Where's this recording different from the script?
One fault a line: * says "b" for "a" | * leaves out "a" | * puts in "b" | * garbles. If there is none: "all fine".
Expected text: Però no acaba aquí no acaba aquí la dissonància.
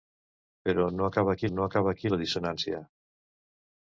all fine